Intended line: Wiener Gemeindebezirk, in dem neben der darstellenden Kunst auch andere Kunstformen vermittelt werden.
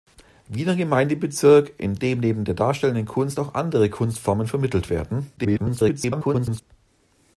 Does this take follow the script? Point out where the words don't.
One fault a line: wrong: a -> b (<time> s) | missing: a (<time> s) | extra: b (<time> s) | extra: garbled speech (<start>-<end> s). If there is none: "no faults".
extra: garbled speech (5.4-6.6 s)